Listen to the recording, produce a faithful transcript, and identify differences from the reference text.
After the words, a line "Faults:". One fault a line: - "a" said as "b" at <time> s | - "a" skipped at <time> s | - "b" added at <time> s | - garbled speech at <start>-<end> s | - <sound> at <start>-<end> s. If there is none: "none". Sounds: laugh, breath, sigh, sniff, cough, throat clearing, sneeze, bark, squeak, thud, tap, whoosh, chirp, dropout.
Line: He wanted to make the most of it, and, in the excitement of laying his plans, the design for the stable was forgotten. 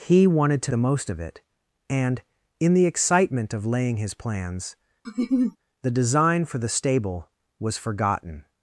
He wanted to the most of it, and, in the excitement of laying his plans, the design for the stable was forgotten.
Faults:
- "make" skipped at 0.7 s
- laugh at 5.0-5.6 s